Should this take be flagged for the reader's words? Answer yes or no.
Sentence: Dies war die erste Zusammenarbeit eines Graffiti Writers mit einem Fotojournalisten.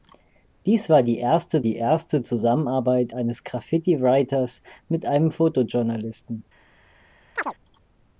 yes